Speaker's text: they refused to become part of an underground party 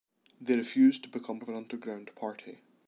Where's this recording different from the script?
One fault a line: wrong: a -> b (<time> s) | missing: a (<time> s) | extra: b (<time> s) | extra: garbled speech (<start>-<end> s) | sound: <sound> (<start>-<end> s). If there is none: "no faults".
missing: part (1.4 s)